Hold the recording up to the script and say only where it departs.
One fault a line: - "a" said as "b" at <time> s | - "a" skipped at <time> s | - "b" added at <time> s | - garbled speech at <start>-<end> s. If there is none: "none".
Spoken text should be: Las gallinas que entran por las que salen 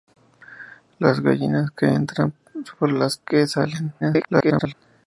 - garbled speech at 4.0-4.7 s